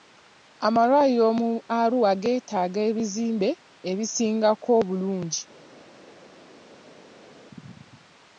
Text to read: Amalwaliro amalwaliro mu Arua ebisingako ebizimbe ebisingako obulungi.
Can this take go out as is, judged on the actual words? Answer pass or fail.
fail